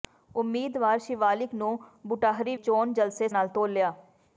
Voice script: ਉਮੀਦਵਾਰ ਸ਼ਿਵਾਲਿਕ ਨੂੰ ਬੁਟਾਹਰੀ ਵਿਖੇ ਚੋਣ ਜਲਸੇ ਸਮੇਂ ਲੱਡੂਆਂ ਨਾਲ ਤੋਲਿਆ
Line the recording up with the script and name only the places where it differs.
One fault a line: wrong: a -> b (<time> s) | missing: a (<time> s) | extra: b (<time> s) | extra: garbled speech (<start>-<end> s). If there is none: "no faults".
missing: ਵਿਖੇ (2.5 s)
missing: ਸਮੇਂ ਲੱਡੂਆਂ (3.3 s)